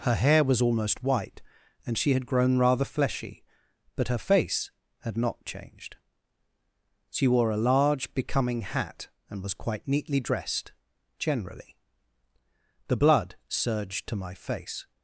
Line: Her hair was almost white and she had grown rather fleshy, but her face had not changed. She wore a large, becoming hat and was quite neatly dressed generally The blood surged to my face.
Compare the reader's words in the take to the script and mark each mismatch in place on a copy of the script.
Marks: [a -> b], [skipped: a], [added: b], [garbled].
Her hair was almost white and she had grown rather fleshy, but her face had not changed. She wore a large, becoming hat and was quite neatly dressed generally The blood surged to my face.